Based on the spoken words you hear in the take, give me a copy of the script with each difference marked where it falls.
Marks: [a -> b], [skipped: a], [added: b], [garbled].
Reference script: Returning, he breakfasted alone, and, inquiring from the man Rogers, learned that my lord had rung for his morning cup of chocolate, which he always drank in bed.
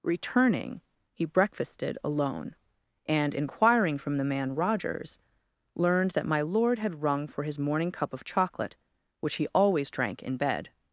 Returning, he breakfasted alone, and, inquiring from the man Rogers, learned that my lord had rung for his morning cup of chocolate, which he always drank in bed.